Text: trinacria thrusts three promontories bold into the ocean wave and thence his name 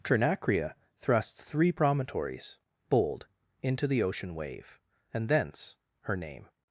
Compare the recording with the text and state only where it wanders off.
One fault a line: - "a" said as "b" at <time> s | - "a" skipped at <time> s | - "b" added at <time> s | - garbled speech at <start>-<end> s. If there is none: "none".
- "his" said as "her" at 6.0 s